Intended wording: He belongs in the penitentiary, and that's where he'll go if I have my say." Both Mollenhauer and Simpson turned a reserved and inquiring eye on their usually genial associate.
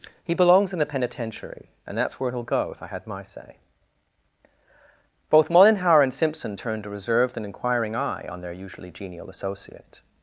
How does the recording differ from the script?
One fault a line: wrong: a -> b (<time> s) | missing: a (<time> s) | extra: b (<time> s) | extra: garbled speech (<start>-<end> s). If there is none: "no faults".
wrong: have -> had (2.9 s)